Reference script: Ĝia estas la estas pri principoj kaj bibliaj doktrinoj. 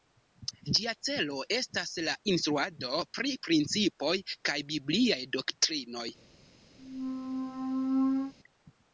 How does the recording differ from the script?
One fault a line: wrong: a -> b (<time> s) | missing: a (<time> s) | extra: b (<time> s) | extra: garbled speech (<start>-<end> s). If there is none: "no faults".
extra: celo (1.1 s)
wrong: estas -> instruado (2.3 s)